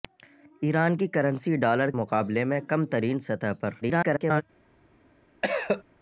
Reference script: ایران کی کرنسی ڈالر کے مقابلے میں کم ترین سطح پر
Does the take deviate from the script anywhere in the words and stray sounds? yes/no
yes